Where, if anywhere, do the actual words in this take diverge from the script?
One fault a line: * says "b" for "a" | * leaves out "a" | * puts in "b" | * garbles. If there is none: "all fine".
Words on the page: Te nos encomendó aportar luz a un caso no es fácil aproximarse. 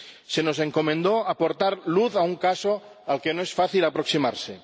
* says "Se" for "Te"
* puts in "al que"